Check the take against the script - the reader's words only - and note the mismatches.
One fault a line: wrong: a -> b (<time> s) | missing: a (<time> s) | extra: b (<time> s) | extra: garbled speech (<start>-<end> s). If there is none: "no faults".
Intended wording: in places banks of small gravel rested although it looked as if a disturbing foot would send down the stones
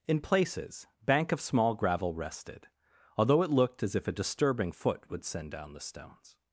wrong: banks -> bank (1.1 s)